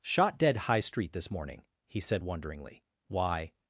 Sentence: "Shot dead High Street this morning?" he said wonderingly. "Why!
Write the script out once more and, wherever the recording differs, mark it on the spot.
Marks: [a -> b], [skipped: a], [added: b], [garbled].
"Shot dead High Street this morning?" he said wonderingly. "Why!